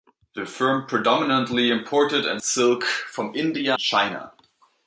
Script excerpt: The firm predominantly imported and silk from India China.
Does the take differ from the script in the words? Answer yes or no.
no